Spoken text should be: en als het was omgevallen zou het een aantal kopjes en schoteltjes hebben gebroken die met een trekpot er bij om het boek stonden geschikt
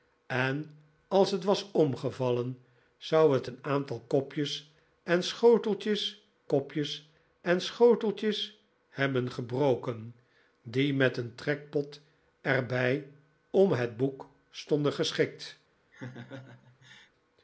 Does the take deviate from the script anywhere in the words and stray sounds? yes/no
yes